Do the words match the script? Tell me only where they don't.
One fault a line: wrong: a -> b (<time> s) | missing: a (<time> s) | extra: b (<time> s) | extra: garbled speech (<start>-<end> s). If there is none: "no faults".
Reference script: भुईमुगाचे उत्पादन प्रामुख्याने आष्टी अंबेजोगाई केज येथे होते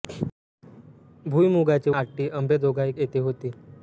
missing: उत्पादन प्रामुख्याने (1.9 s)
missing: केज (2.9 s)